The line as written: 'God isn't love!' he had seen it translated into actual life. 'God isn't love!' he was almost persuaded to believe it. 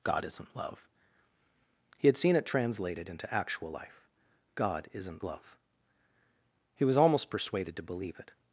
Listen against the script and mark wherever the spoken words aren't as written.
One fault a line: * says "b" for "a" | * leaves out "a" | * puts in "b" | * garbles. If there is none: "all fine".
all fine